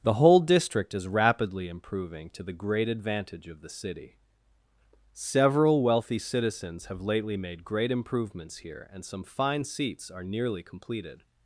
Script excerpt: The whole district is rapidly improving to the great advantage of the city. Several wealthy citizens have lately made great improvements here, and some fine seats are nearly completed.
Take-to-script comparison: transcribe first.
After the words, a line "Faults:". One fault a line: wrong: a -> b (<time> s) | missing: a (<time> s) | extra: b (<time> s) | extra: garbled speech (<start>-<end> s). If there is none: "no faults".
The whole district is rapidly improving to the great advantage of the city. Several wealthy citizens have lately made great improvements here, and some fine seats are nearly completed.
Faults:
no faults